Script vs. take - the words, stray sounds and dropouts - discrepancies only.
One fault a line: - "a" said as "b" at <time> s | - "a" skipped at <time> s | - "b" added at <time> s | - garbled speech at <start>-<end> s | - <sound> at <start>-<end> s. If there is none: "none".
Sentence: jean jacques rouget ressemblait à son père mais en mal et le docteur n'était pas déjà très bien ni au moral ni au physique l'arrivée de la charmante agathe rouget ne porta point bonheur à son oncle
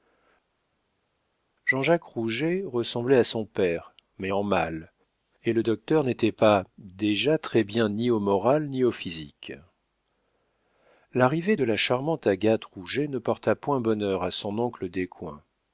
none